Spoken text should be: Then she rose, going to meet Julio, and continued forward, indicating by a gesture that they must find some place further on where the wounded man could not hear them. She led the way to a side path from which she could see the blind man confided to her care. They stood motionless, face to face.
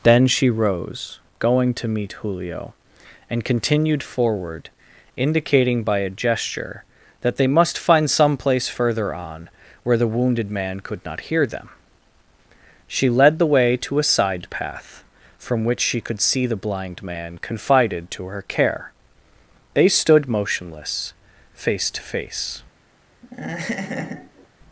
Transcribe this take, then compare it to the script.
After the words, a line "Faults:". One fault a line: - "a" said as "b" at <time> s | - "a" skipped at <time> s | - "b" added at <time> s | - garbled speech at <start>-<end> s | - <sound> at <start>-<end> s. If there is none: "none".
Then she rose, going to meet Julio, and continued forward, indicating by a gesture that they must find some place further on where the wounded man could not hear them. She led the way to a side path from which she could see the blind man confided to her care. They stood motionless, face to face.
Faults:
- laugh at 23.2-24.5 s